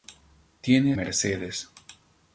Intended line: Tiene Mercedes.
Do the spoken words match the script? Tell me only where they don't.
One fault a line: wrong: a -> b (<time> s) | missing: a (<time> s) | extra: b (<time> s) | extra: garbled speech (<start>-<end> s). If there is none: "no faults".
no faults